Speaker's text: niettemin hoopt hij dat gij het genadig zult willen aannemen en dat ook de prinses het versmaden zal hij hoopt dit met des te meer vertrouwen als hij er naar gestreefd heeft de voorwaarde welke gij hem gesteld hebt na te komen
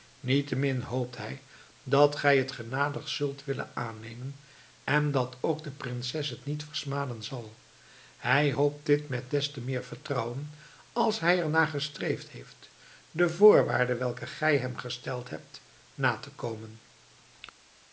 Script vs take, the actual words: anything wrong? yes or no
yes